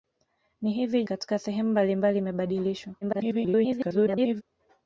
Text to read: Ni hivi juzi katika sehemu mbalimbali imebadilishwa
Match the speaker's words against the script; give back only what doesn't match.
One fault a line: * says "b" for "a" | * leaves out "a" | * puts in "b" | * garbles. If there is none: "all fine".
* leaves out "juzi"
* garbles